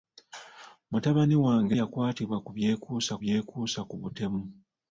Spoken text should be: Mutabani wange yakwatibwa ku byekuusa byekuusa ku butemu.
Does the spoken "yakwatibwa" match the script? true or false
true